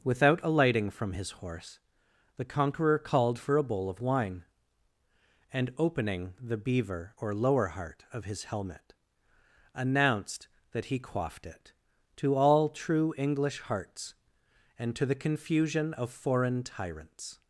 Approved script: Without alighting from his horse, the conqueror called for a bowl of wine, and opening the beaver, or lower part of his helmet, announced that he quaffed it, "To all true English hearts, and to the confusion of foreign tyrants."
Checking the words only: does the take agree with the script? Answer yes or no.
no